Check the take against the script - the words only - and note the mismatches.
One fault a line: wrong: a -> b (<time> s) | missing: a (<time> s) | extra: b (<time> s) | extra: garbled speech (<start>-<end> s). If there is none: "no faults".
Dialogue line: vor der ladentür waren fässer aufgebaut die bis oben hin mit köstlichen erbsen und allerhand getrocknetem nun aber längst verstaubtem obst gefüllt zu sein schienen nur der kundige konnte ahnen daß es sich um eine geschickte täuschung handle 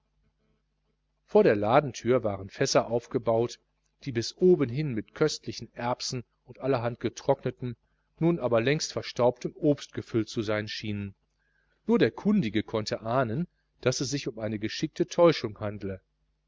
no faults